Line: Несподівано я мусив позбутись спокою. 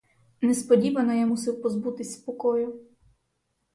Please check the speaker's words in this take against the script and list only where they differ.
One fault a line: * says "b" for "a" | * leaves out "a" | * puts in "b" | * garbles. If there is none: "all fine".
all fine